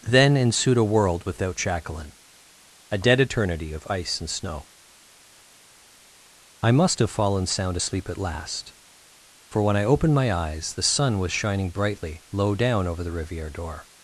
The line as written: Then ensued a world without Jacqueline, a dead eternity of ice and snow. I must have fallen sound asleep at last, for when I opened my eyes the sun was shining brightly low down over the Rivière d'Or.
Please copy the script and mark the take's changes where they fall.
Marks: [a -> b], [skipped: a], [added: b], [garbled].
Then ensued a world without Jacqueline, a dead eternity of ice and snow. I must have fallen sound asleep at last, for when I opened my eyes the sun was shining brightly low down over the Rivière d'Or.